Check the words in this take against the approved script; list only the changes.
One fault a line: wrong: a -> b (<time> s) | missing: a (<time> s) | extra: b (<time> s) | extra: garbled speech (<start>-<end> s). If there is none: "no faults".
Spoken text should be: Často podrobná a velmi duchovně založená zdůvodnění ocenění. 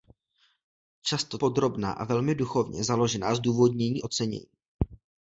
no faults